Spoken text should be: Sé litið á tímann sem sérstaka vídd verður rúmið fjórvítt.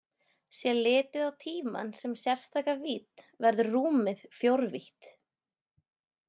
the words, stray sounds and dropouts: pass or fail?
pass